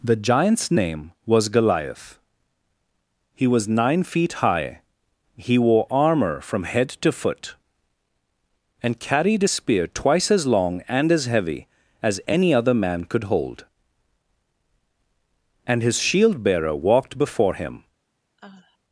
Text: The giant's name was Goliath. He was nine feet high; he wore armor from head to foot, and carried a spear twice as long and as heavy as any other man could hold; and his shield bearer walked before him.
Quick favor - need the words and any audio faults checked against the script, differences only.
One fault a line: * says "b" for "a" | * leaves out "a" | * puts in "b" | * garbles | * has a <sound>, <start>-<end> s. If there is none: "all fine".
* has a sigh, 18.4-18.8 s